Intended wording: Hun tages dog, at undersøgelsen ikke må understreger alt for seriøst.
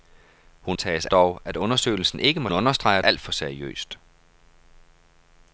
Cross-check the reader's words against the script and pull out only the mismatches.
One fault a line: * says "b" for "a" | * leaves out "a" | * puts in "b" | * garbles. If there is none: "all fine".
all fine